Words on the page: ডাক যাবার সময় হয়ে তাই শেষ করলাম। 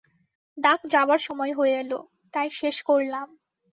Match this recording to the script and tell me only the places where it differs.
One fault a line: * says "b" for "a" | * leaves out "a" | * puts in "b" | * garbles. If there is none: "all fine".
* puts in "এল"